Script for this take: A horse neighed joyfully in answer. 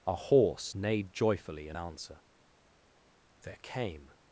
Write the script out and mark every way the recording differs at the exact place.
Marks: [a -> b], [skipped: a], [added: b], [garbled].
A horse neighed joyfully in answer. [added: There came]